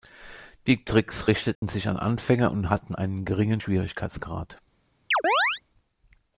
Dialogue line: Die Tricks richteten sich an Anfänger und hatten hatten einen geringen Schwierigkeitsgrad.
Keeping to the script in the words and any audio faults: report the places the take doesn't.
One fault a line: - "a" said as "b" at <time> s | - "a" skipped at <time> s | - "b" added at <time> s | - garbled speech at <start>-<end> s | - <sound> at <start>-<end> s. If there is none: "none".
- dropout at 1.5-1.6 s
- "hatten" skipped at 2.9 s
- chirp at 5.1-5.6 s